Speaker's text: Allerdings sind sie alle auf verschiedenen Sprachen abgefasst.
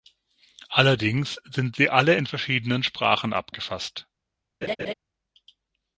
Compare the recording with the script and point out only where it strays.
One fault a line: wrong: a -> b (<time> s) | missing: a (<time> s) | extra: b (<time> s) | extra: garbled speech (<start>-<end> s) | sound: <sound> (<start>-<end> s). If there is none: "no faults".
wrong: auf -> in (2.1 s)
sound: laugh (4.6-4.9 s)